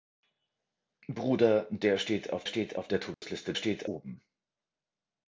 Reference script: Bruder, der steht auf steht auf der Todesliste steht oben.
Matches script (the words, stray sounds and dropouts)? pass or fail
fail